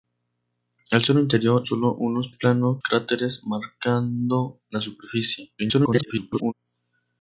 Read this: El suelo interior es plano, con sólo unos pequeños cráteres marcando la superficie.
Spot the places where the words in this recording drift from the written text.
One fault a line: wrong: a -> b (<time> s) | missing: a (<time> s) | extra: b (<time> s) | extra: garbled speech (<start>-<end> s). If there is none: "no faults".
missing: es plano con (1.6 s)
wrong: pequeños -> plano (2.3 s)
extra: garbled speech (5.6-6.5 s)